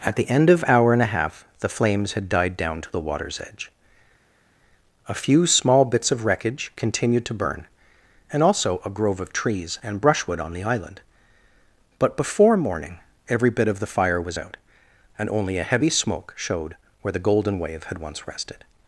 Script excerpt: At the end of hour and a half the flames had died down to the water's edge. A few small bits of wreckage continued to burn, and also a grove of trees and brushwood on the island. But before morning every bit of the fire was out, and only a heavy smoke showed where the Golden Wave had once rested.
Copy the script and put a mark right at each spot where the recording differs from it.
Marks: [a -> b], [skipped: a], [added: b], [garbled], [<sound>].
At the end of hour and a half the flames had died down to the water's edge. A few small bits of wreckage continued to burn, and also a grove of trees and brushwood on the island. But before morning every bit of the fire was out, and only a heavy smoke showed where the Golden Wave had once rested.